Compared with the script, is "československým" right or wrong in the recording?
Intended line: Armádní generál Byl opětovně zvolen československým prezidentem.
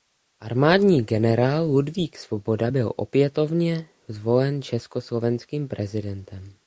right